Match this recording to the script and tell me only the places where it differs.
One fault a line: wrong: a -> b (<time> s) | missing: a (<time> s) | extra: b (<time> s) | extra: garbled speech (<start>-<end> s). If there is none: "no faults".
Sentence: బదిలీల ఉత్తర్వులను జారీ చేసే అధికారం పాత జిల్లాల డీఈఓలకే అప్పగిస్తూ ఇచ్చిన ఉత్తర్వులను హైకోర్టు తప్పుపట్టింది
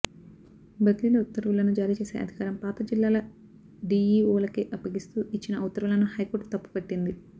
no faults